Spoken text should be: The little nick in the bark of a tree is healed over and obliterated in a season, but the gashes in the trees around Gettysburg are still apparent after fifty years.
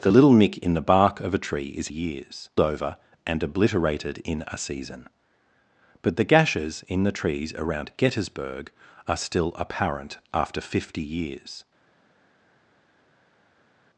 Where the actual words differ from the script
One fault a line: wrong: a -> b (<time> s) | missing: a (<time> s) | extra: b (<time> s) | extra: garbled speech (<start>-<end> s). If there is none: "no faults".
wrong: healed -> years (1.9 s)